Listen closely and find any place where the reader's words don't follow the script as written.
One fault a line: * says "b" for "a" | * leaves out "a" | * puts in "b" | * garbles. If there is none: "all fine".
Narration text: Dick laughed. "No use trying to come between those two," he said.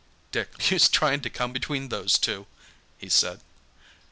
* leaves out "laughed No"